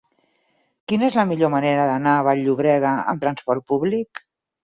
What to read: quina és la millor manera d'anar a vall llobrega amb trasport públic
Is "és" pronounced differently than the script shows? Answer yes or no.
no